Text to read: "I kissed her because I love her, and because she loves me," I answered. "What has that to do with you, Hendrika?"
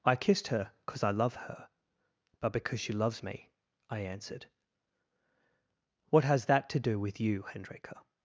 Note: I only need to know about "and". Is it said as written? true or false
false